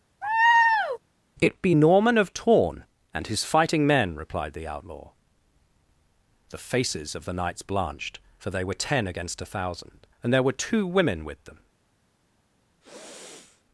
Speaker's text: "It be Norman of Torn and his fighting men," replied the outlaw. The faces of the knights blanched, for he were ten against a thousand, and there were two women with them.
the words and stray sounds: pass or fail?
fail